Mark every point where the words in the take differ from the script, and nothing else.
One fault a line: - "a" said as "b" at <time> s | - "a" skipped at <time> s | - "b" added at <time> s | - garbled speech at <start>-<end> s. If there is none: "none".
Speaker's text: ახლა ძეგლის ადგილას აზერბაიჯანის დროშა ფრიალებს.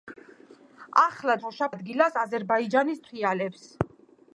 - "ძეგლის" said as "დროშა" at 1.4 s
- "დროშა" skipped at 3.1 s